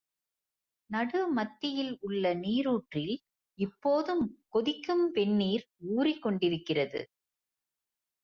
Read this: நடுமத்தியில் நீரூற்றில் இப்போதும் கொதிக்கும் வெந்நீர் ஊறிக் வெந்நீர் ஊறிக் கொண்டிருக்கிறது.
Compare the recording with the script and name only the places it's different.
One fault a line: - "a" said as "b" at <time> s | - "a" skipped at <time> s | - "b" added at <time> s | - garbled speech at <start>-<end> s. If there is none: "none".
- "உள்ள" added at 2.0 s
- "வெந்நீர் ஊறிக்" skipped at 6.2 s